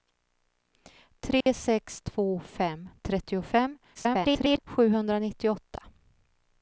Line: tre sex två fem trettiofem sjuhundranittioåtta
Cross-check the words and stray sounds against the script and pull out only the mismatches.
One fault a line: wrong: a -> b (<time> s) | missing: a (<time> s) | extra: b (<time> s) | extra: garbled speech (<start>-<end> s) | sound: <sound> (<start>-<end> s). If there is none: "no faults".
sound: dropout (1.4-1.5 s)
extra: garbled speech (3.9-4.6 s)